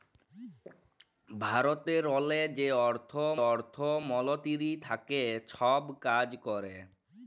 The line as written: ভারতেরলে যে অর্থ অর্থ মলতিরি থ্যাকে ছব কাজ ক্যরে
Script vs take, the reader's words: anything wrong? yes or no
no